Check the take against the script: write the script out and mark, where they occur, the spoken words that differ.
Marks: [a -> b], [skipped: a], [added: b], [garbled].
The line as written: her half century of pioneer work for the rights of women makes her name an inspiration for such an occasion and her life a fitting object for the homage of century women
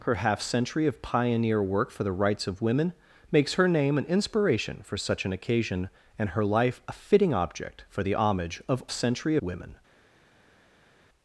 her half century of pioneer work for the rights of women makes her name an inspiration for such an occasion and her life a fitting object for the homage of century women